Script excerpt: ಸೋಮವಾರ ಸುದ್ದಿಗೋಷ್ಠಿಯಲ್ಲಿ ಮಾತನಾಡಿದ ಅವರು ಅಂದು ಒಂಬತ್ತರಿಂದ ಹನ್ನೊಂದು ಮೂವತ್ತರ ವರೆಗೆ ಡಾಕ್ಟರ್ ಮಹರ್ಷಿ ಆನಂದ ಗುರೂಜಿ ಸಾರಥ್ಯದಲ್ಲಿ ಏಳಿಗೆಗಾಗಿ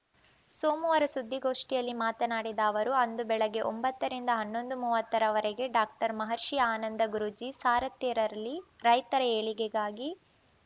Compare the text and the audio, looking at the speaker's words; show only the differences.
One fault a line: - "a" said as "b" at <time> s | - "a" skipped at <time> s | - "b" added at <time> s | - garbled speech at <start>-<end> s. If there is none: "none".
- "ಬೆಳಗ್ಗೆ" added at 3.3 s
- "ರೈತರ" added at 8.9 s